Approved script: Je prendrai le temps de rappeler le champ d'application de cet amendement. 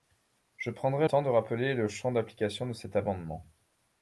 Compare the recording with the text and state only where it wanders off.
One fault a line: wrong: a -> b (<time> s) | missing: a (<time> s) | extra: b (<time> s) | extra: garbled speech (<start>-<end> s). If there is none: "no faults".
missing: le (1.1 s)